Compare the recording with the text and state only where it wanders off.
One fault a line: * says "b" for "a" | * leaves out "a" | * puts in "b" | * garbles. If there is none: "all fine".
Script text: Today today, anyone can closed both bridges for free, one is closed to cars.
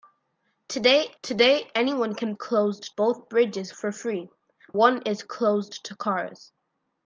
all fine